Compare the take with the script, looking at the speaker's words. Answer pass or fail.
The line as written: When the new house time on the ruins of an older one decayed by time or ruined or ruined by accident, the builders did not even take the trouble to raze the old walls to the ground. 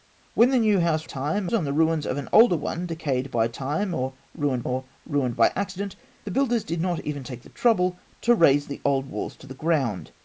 pass